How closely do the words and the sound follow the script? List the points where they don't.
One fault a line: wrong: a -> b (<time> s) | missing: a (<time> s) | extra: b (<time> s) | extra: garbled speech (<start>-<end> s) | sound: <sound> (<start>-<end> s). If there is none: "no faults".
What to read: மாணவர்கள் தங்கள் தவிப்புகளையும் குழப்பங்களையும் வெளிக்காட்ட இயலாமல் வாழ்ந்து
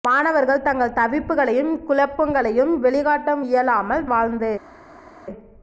no faults